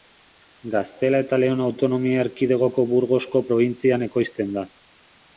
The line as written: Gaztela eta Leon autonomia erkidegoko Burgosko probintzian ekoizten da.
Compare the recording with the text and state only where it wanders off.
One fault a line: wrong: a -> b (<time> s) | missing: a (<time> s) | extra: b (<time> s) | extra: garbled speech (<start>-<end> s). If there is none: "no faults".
no faults